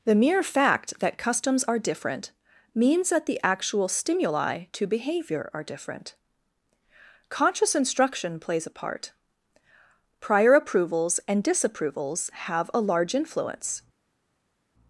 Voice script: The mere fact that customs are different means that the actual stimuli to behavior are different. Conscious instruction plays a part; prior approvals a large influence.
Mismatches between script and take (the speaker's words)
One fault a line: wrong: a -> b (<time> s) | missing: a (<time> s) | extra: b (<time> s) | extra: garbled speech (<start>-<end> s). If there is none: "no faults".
extra: and disapprovals have (11.3 s)